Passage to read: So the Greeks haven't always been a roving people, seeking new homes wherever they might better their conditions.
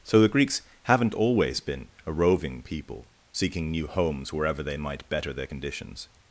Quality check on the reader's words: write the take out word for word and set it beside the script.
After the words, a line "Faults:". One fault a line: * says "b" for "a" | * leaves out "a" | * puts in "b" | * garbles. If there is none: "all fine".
So the Greeks haven't always been a roving people, seeking new homes wherever they might better their conditions.
Faults:
all fine